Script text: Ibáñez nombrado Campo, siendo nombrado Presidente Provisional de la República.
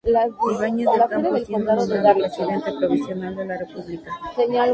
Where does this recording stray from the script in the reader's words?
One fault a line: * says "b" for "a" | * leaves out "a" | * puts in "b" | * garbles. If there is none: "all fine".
* says "del" for "nombrado"